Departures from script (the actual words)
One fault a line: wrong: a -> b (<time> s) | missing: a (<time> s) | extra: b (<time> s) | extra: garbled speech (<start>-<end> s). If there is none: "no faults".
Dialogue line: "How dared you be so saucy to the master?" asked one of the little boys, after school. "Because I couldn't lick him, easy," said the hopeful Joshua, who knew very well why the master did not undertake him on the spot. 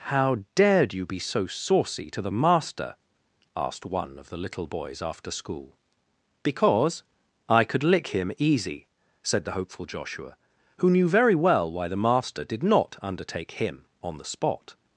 wrong: couldn't -> could (7.6 s)